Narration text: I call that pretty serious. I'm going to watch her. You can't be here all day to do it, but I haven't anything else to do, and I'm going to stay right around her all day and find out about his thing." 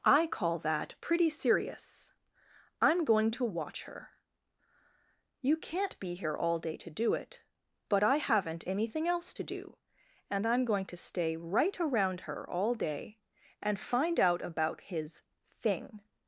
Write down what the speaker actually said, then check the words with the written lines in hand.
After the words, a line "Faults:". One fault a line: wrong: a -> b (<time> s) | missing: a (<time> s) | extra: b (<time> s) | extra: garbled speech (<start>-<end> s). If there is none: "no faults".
I call that pretty serious. I'm going to watch her. You can't be here all day to do it, but I haven't anything else to do, and I'm going to stay right around her all day and find out about his thing."
Faults:
no faults